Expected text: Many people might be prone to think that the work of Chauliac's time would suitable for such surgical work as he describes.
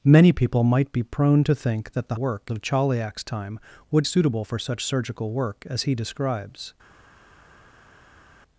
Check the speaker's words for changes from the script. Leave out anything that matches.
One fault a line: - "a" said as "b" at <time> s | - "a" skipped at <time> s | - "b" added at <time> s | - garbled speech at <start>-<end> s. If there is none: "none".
none